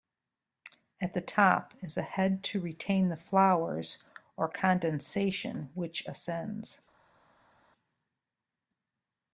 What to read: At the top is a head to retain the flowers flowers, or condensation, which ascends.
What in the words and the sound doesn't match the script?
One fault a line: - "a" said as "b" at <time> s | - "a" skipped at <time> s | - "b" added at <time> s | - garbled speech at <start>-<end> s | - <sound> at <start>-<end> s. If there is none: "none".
- "flowers" skipped at 4.0 s